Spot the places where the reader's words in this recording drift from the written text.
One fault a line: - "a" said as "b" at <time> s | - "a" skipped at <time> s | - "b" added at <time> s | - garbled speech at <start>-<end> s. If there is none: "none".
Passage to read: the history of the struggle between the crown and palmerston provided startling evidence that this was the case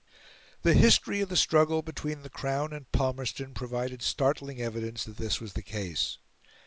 none